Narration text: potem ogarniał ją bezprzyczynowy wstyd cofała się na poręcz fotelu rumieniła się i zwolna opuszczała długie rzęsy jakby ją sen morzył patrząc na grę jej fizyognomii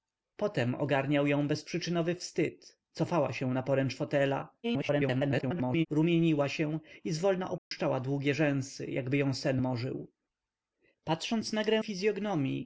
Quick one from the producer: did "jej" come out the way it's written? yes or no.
no